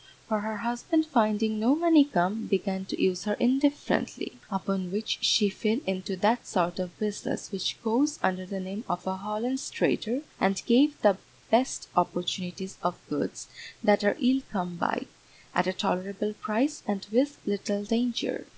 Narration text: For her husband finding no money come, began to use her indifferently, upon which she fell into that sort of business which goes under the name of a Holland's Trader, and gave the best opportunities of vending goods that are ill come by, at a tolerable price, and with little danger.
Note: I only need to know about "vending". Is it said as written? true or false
false